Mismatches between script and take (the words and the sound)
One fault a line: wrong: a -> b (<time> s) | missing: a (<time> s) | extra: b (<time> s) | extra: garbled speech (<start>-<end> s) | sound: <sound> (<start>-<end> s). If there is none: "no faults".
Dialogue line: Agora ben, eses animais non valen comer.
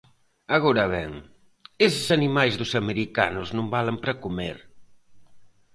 extra: dos americanos (2.6 s)
extra: para (4.0 s)